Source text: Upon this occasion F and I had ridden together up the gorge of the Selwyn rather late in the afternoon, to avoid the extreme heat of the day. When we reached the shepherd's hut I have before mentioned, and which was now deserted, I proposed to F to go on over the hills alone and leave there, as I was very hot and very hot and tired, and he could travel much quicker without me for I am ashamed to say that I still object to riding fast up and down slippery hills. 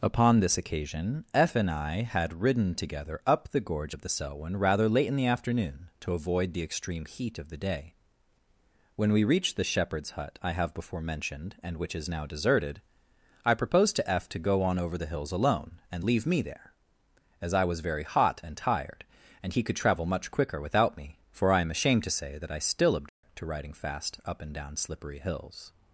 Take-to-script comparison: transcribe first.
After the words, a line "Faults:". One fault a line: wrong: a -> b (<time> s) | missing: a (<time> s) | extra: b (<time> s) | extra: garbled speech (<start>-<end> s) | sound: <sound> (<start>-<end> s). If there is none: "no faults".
Upon this occasion F and I had ridden together up the gorge of the Selwyn rather late in the afternoon, to avoid the extreme heat of the day. When we reached the shepherd's hut I have before mentioned, and which is now deserted, I proposed to F to go on over the hills alone and leave me there, as I was very hot and tired, and he could travel much quicker without me for I am ashamed to say that I still object to riding fast up and down slippery hills.
Faults:
wrong: was -> is (12.0 s)
extra: me (16.3 s)
missing: very hot and (18.6 s)
sound: dropout (23.1-23.2 s)